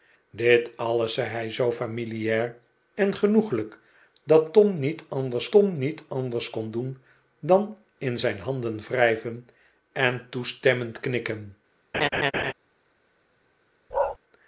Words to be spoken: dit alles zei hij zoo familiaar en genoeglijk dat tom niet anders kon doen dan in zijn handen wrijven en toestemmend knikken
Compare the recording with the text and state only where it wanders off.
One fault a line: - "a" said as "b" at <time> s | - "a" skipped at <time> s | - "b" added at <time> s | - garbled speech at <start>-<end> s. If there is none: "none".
- "tom niet anders" added at 5.5 s